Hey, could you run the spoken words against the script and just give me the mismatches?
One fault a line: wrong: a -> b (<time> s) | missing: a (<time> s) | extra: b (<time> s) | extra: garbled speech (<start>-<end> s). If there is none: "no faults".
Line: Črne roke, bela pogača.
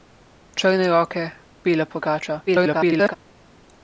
extra: garbled speech (2.5-3.2 s)